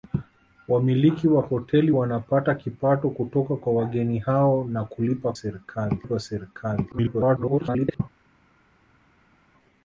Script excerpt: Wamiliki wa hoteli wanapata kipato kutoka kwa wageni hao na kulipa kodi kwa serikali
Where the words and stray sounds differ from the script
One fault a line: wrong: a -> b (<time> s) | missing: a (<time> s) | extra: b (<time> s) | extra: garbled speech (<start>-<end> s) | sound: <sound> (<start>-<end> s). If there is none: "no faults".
wrong: kodi -> serikali (5.3 s)
extra: garbled speech (6.9-8.0 s)